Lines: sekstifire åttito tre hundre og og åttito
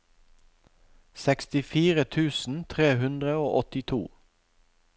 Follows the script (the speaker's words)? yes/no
no